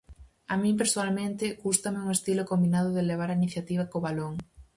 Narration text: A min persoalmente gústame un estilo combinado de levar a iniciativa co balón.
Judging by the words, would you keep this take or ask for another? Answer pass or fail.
pass